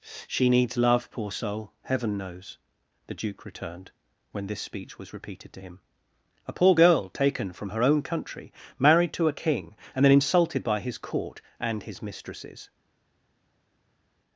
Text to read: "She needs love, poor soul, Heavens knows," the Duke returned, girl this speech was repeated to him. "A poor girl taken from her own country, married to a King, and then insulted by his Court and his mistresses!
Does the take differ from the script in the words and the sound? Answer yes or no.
yes